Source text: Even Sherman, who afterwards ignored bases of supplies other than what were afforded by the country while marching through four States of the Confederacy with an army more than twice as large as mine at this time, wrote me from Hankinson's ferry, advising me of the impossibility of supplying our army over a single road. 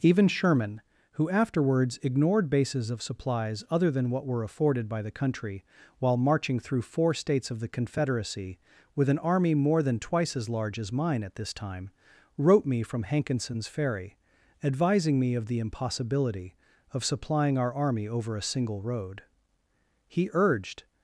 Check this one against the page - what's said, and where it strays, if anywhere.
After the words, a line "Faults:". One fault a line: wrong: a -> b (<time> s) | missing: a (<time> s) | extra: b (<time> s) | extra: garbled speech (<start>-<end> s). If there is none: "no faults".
Even Sherman, who afterwards ignored bases of supplies other than what were afforded by the country while marching through four States of the Confederacy with an army more than twice as large as mine at this time, wrote me from Hankinson's ferry, advising me of the impossibility of supplying our army over a single road. He urged
Faults:
extra: He urged (20.1 s)